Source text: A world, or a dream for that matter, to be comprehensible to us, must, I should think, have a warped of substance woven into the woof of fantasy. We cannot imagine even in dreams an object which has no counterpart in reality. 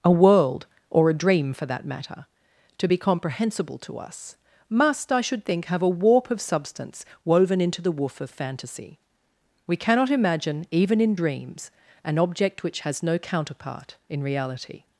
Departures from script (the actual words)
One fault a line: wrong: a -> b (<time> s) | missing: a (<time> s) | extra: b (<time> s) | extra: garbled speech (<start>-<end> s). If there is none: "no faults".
wrong: warped -> warp (5.9 s)